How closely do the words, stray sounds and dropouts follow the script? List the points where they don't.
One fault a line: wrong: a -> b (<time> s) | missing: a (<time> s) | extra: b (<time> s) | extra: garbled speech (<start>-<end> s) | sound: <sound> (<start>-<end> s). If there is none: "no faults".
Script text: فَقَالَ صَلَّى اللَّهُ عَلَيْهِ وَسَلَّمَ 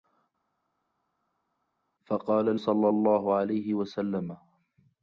no faults